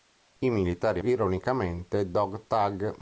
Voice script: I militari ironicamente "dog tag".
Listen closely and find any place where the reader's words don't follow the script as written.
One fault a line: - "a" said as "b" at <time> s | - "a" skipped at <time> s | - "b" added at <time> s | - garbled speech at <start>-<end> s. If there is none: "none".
none